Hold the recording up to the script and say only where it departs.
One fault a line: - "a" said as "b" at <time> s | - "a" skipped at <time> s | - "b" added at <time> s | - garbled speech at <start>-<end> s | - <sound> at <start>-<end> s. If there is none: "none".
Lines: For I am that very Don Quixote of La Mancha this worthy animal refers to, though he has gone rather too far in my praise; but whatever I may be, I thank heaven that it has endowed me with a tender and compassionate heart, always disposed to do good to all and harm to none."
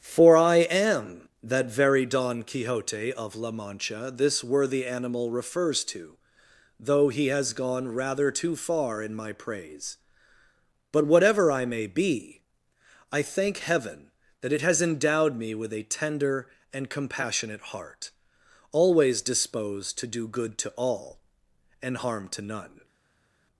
none